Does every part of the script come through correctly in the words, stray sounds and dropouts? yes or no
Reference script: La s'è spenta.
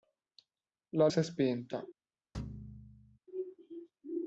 no